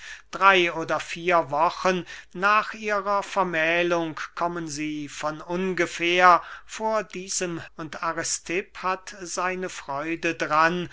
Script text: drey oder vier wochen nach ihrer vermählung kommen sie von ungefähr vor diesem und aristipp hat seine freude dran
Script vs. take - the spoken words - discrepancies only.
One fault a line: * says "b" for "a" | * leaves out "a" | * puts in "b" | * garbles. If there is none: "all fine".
all fine